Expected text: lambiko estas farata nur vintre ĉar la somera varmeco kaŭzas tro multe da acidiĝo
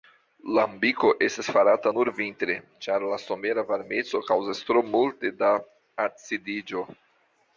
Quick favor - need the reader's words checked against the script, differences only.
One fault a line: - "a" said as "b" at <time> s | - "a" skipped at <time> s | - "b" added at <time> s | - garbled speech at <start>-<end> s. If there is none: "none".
none